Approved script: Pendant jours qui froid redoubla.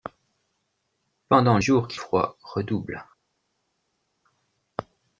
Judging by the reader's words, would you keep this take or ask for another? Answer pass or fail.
pass